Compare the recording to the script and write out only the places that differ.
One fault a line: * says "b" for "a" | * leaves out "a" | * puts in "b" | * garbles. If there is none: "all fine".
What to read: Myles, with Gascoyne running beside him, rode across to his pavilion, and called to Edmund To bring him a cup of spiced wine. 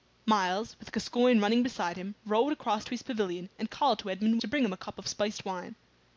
all fine